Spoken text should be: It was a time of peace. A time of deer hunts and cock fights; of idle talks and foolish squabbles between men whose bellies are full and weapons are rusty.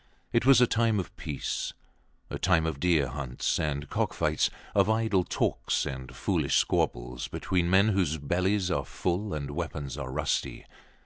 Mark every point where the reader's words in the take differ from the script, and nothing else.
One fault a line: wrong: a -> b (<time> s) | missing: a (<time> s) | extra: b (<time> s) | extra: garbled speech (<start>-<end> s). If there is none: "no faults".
no faults